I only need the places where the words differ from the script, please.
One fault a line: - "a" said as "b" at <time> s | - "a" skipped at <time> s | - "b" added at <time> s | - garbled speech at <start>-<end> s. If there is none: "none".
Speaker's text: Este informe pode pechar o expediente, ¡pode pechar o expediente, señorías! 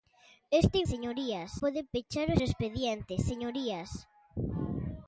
- "informe" said as "señorías" at 0.9 s
- "expediente pode pechar" skipped at 2.4 s